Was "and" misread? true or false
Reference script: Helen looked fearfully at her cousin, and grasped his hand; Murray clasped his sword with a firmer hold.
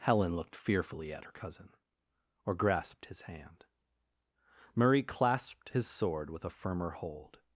true